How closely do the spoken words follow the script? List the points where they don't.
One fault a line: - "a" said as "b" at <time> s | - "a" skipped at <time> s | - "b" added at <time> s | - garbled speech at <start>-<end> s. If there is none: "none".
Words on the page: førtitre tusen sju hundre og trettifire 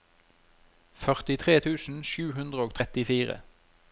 none